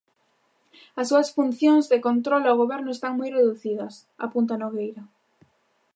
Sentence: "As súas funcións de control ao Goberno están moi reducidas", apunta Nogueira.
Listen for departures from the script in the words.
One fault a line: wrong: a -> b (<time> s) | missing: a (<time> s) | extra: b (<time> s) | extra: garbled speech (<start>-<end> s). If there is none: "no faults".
no faults